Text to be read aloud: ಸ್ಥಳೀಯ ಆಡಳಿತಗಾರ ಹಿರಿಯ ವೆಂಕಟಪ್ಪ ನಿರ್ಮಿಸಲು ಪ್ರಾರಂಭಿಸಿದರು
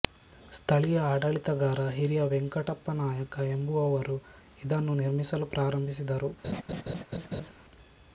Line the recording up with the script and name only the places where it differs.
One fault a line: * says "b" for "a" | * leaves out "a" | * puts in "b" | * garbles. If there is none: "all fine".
* puts in "ನಾಯಕ ಎಂಬುವವರು ಇದನ್ನು"